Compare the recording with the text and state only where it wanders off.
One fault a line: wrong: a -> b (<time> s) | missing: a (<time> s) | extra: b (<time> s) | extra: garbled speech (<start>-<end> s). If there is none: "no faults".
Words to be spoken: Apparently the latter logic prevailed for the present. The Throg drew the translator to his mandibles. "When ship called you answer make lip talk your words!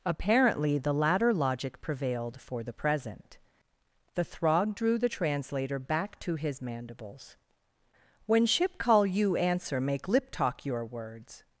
extra: back (5.8 s)
wrong: called -> call (8.8 s)